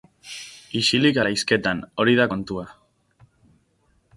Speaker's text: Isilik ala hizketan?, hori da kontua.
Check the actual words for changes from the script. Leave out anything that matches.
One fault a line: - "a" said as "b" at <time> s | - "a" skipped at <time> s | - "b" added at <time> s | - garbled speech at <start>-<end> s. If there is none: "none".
none